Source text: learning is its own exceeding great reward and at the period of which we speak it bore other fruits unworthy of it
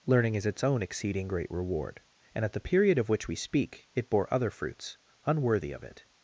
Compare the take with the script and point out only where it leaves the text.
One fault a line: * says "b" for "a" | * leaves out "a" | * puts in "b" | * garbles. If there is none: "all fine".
all fine